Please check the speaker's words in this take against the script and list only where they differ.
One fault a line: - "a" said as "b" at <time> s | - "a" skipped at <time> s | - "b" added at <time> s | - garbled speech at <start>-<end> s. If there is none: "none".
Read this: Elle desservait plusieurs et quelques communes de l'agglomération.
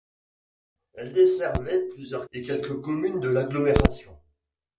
none